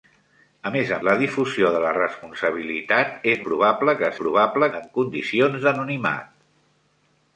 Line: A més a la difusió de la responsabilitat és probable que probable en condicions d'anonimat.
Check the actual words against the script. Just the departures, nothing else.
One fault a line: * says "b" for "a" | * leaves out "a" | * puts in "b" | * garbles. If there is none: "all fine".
all fine